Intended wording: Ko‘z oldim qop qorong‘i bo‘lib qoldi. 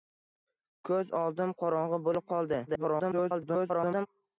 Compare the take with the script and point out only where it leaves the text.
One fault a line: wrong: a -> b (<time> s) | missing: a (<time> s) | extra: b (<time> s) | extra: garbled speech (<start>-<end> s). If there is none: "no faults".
missing: qop (1.5 s)
extra: garbled speech (2.7-4.1 s)